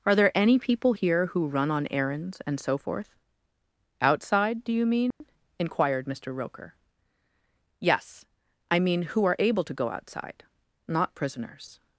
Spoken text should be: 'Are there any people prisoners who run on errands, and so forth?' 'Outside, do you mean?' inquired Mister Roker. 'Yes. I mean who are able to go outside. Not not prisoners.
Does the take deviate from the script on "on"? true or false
false